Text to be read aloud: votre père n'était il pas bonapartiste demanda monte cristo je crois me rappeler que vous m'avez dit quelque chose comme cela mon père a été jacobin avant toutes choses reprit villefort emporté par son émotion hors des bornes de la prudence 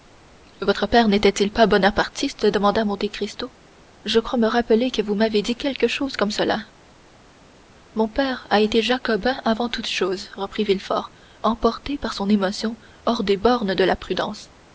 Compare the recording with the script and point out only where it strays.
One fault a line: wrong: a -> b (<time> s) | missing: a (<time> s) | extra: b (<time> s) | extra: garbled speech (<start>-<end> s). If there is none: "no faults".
no faults